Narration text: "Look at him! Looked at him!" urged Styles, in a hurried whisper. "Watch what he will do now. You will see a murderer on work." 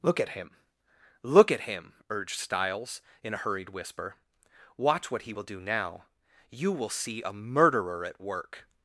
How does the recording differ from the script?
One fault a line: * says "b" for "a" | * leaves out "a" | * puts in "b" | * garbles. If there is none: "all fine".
* says "Look" for "Looked"
* says "at" for "on"